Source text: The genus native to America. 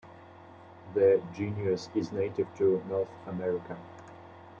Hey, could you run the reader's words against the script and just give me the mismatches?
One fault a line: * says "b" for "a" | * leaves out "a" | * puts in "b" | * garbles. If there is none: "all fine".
* puts in "is"
* puts in "North"